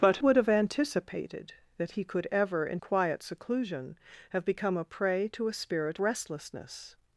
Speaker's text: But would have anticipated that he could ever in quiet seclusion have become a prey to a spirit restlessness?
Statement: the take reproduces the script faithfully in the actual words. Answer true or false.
true